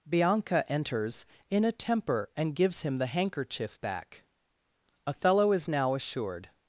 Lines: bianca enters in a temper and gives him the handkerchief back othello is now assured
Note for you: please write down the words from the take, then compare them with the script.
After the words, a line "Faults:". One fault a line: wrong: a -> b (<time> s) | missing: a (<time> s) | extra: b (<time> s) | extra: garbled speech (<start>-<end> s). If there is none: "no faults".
bianca enters in a temper and gives him the handkerchief back othello is now assured
Faults:
no faults